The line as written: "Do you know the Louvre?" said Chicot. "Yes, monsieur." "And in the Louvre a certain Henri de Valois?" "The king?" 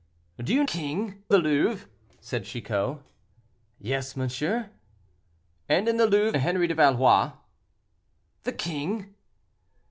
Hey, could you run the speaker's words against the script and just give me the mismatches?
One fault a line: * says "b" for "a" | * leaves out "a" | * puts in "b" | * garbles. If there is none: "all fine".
* says "king" for "know"
* leaves out "a certain"